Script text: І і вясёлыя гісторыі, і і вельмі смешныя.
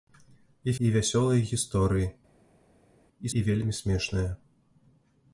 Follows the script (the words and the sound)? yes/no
yes